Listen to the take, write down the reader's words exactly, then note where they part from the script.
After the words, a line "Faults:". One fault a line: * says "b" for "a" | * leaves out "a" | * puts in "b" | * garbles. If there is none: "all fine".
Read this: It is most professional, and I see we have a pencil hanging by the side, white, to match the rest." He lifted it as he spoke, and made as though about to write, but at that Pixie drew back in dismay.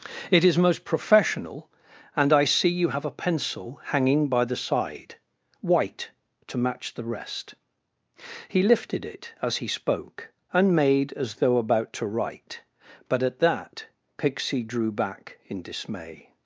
It is most professional, and I see you have a pencil hanging by the side, white, to match the rest." He lifted it as he spoke, and made as though about to write, but at that Pixie drew back in dismay.
Faults:
* says "you" for "we"